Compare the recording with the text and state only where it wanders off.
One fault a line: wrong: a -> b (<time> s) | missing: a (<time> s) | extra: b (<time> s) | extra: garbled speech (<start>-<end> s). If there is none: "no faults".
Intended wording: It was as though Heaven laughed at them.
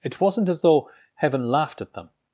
wrong: was -> wasn't (0.2 s)